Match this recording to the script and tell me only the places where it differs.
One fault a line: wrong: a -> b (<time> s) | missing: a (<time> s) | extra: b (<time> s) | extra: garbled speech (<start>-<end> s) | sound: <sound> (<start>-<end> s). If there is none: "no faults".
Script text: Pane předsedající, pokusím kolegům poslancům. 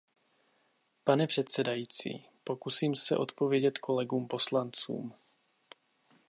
extra: se odpovědět (3.0 s)